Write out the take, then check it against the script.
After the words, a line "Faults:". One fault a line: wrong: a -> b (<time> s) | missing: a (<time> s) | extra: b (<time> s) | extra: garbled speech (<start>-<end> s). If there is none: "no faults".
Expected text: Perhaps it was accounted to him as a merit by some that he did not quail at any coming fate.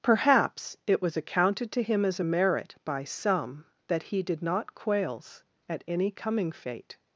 Perhaps it was accounted to him as a merit by some that he did not quails at any coming fate.
Faults:
wrong: quail -> quails (4.7 s)